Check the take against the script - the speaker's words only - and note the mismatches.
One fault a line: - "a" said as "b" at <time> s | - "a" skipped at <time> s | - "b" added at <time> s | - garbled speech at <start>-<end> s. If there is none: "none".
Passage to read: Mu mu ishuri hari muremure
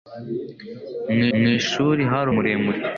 none